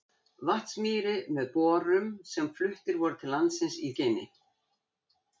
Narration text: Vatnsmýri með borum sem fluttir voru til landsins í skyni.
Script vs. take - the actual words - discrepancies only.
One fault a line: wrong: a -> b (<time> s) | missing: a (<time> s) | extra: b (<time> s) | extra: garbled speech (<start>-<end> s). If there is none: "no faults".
no faults